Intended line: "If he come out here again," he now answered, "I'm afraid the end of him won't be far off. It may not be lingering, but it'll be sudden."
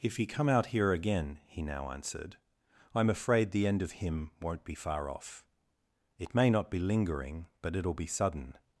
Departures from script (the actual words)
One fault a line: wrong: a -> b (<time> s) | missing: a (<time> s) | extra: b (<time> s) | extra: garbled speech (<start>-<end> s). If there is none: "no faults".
no faults